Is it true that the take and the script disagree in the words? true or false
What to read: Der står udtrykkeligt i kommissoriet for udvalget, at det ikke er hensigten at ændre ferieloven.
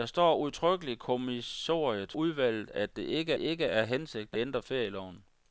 true